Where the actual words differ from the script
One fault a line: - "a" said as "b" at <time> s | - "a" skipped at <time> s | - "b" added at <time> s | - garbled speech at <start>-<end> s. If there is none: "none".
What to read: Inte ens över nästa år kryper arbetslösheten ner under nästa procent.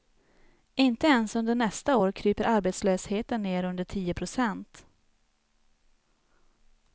- "över" said as "under" at 1.4 s
- "nästa" said as "tio" at 3.8 s